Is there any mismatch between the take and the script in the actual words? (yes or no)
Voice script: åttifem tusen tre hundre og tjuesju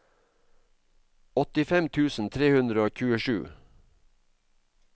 no